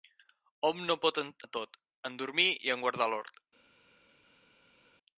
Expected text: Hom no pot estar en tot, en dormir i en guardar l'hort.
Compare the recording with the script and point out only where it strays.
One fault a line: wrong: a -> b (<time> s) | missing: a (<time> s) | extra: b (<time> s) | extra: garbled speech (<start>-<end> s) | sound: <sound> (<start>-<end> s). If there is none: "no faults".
missing: estar (1.2 s)